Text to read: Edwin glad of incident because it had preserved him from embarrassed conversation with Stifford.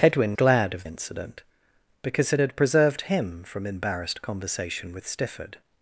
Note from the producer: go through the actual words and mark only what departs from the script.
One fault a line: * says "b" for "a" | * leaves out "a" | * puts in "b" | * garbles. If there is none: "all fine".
all fine